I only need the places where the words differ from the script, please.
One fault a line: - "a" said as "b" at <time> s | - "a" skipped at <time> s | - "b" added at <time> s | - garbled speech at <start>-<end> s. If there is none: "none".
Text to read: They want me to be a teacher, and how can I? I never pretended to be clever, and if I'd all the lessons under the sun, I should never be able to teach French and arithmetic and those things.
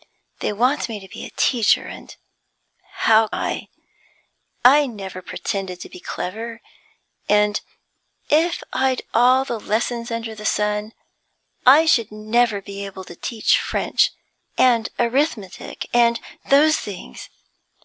- "can" skipped at 3.3 s